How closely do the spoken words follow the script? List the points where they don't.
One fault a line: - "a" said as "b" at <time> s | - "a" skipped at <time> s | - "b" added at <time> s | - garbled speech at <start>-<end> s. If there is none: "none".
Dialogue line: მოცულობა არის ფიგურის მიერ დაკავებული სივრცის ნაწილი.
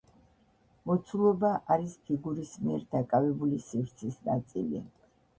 none